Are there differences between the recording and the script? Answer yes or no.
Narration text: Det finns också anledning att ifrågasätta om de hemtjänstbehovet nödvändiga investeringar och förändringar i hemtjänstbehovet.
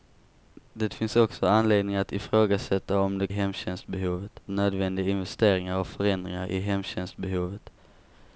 no